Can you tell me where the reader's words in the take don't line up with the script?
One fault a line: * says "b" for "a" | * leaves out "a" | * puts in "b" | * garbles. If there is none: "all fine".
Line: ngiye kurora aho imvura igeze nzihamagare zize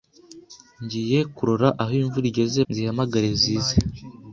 all fine